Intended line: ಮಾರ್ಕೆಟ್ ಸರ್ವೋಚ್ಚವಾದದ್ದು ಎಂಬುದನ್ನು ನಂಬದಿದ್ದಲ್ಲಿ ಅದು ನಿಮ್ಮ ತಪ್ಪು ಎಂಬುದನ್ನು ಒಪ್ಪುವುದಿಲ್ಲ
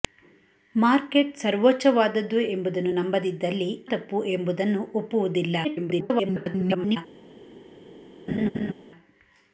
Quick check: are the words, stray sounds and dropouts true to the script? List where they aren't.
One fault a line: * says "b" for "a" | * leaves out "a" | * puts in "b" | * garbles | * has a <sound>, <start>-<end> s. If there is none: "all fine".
* leaves out "ಅದು ನಿಮ್ಮ"
* garbles
* has a laugh, 8.3-8.7 s